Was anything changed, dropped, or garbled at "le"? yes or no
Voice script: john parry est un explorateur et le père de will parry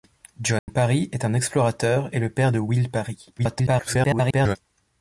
no